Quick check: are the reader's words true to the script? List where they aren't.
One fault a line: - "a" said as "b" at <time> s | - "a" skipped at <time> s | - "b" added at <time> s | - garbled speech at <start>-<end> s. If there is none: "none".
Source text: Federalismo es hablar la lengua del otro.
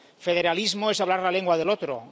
none